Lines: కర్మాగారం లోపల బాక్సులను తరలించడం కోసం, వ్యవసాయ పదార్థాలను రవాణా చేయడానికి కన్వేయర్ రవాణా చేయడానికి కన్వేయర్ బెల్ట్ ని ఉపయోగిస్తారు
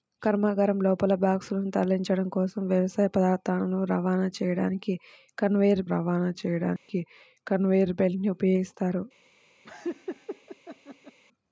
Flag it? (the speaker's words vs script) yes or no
no